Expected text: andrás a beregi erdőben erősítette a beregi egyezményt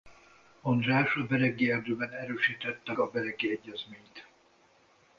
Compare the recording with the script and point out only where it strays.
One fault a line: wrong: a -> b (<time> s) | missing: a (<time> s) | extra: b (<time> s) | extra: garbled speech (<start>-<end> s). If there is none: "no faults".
no faults